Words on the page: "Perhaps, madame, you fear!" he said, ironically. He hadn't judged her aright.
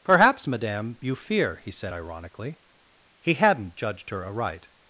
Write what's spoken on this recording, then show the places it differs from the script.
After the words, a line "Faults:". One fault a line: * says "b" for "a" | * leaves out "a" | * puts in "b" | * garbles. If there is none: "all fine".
"Perhaps, madame, you fear!" he said, ironically. He hadn't judged her aright.
Faults:
all fine